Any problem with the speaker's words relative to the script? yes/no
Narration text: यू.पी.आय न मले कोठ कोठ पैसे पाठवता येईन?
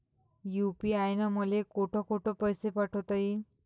no